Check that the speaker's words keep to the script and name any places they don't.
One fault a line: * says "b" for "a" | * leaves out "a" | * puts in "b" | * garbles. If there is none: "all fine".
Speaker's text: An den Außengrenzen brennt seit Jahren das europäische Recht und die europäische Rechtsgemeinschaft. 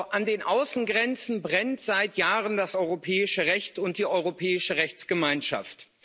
all fine